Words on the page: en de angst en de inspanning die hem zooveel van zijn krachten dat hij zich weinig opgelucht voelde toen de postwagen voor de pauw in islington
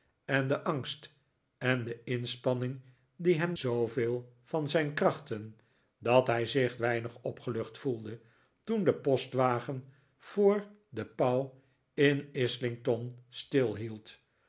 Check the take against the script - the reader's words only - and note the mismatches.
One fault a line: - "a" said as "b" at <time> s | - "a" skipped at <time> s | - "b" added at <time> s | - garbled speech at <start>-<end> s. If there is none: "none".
none